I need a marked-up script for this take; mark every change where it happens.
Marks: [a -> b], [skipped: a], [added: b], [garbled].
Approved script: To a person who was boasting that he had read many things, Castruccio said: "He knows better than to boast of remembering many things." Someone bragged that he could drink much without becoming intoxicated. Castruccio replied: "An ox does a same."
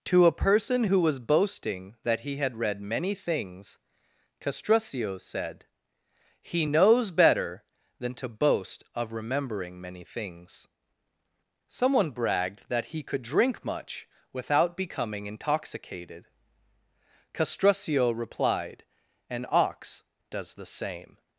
To a person who was boasting that he had read many things, Castruccio said: "He knows better than to boast of remembering many things." Someone bragged that he could drink much without becoming intoxicated. Castruccio replied: "An ox does [a -> the] same."